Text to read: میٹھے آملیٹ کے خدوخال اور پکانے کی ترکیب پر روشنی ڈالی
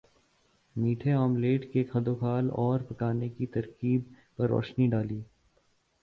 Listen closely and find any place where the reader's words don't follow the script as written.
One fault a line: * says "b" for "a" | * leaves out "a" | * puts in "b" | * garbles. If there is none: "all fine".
all fine